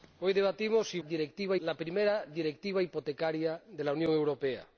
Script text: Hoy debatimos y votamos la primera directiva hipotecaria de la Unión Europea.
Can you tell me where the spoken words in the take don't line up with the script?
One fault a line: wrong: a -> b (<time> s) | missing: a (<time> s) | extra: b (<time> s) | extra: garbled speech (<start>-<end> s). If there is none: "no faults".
wrong: votamos -> directiva (1.0 s)